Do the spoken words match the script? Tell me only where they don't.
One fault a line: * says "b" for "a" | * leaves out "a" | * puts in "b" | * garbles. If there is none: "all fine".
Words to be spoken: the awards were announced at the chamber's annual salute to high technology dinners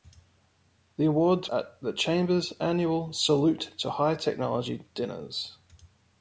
* leaves out "were announced"